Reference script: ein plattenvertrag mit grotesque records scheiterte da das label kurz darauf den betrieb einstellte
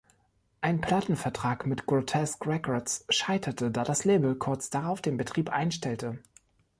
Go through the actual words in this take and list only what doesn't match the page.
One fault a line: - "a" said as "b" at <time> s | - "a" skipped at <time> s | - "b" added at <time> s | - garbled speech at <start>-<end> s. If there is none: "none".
none